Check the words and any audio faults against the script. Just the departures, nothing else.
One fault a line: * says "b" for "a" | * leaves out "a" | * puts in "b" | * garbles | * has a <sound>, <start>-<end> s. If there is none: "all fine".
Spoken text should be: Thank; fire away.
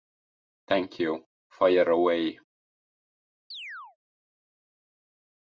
* puts in "you"
* has a chirp, 3.5-4.0 s